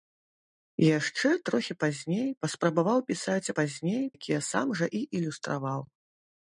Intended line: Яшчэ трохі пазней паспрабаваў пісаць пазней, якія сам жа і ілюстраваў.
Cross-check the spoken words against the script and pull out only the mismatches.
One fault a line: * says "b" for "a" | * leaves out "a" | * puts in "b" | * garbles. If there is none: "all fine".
all fine